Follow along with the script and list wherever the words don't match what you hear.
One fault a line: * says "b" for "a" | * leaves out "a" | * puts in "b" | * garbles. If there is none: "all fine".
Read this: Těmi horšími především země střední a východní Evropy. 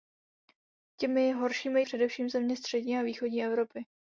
all fine